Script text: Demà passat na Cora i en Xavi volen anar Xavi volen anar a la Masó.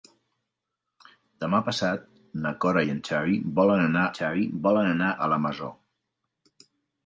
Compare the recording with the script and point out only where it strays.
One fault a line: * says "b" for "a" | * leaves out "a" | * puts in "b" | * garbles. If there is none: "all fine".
all fine